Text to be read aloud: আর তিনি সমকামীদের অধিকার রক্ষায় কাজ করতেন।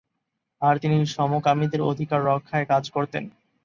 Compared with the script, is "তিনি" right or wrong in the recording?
right